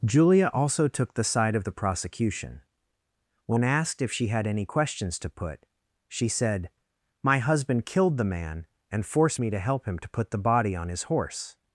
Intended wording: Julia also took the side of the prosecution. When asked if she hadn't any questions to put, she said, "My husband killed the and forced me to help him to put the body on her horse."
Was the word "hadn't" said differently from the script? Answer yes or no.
yes